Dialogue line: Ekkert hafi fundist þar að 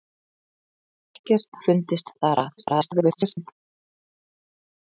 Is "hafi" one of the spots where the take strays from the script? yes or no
yes